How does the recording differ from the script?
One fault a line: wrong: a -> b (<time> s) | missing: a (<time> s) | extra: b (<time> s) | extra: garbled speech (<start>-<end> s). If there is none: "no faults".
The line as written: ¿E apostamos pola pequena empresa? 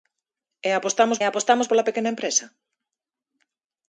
extra: apostamos (1.2 s)